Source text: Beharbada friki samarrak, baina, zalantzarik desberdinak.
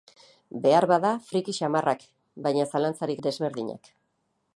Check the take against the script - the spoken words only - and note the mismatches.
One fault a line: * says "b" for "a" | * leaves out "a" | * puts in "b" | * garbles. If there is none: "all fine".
all fine